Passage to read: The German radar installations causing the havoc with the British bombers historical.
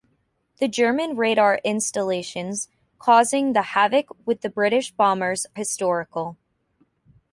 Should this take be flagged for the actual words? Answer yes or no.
no